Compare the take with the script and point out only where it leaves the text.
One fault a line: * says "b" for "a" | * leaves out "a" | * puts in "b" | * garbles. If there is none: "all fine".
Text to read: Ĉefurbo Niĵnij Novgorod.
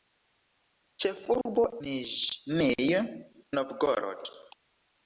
all fine